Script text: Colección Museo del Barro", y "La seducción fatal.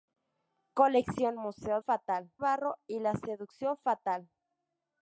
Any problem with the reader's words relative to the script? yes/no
yes